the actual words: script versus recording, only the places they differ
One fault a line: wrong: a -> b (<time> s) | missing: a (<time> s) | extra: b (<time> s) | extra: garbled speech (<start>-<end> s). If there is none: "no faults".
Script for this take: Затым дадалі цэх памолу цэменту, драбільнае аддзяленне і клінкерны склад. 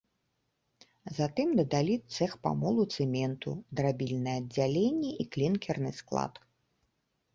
no faults